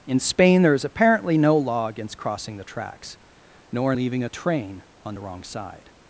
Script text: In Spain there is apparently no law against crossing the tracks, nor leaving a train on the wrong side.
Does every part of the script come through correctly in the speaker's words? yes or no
yes